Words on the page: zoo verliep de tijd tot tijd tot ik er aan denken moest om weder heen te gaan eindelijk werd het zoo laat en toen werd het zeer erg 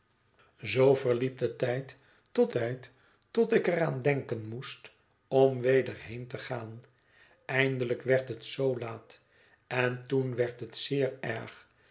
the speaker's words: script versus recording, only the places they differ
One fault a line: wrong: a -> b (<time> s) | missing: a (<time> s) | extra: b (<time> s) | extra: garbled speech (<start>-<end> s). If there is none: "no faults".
no faults